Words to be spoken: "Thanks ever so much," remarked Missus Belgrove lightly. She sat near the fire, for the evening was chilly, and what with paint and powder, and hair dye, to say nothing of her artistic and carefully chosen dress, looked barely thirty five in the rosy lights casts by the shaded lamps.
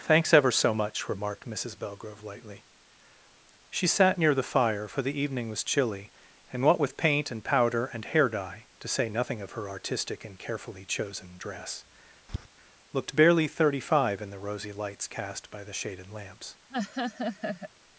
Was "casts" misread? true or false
true